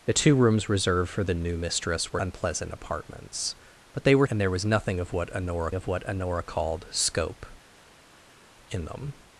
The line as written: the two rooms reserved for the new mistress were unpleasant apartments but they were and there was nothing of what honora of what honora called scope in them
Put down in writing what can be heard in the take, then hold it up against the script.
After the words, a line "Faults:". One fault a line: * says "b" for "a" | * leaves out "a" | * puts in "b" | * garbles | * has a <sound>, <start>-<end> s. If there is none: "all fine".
the two rooms reserved for the new mistress were unpleasant apartments but they were and there was nothing of what honora of what honora called scope in them
Faults:
all fine